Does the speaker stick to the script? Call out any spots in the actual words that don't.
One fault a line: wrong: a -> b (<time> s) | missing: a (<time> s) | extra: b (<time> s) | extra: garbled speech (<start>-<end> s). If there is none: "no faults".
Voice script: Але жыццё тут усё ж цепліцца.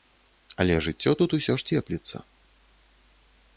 no faults